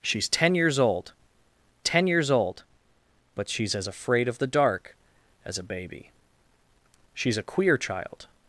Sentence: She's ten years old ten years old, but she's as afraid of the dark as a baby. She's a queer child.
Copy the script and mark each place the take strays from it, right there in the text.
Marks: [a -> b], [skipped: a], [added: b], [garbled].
She's ten years old ten years old, but she's as afraid of the dark as a baby. She's a queer child.